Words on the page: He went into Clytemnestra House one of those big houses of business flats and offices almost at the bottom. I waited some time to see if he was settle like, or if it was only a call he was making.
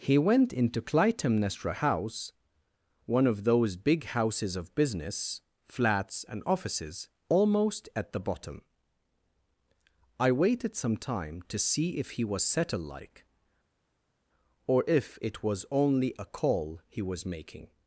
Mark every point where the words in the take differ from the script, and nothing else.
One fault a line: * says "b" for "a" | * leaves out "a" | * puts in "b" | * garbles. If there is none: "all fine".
all fine